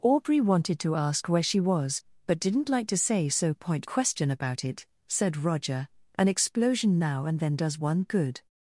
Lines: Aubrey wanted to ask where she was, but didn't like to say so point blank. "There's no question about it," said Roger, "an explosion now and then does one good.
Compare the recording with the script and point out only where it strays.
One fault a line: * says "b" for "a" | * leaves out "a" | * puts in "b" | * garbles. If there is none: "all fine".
* leaves out "blank There's no"